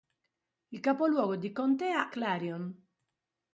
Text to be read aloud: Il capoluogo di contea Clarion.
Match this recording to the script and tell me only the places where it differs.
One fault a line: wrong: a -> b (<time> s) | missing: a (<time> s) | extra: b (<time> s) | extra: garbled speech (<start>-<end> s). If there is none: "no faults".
no faults